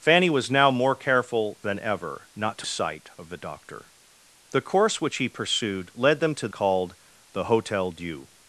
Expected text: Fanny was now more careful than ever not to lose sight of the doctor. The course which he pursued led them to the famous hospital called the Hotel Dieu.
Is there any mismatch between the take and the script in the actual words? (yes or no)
yes